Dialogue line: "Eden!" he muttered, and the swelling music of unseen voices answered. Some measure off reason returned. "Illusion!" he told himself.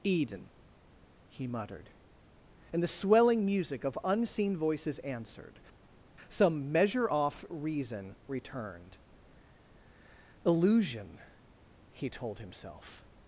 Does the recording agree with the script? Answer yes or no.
yes